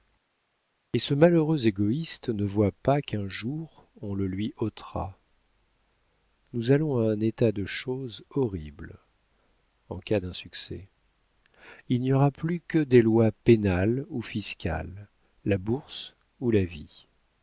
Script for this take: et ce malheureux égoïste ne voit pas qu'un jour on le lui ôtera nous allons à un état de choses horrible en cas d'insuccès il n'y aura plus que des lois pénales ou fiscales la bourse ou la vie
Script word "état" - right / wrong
right